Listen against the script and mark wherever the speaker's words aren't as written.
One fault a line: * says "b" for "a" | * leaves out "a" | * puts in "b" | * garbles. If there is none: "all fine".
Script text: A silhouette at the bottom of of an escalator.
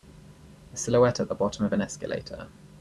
* leaves out "of"